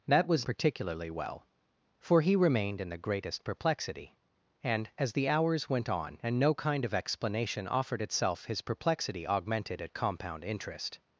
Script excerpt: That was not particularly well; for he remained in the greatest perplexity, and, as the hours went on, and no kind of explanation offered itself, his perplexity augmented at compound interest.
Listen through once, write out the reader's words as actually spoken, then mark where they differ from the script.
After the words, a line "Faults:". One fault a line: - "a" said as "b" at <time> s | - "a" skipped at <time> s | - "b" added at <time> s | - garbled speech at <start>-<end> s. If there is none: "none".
That was particularly well; for he remained in the greatest perplexity, and, as the hours went on, and no kind of explanation offered itself, his perplexity augmented at compound interest.
Faults:
- "not" skipped at 0.5 s